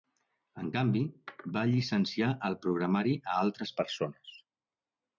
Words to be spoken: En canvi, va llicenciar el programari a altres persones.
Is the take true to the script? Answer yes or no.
yes